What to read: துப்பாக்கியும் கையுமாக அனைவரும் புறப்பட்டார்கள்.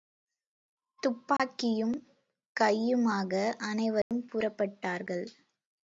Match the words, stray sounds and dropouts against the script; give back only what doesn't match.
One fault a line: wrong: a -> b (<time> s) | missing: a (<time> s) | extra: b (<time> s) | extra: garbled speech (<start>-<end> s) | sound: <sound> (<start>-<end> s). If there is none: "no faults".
sound: dropout (1.4-1.4 s)
sound: dropout (4.0-4.1 s)